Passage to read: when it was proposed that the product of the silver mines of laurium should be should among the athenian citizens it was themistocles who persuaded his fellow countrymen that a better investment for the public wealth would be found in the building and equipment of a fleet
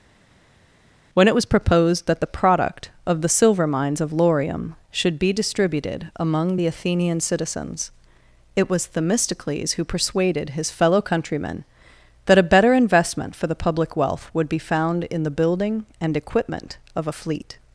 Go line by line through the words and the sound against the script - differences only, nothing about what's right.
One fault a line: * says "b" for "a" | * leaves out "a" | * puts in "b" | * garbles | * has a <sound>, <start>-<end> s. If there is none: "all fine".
* says "distributed" for "should"